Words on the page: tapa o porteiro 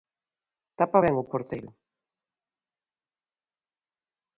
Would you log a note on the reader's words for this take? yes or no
yes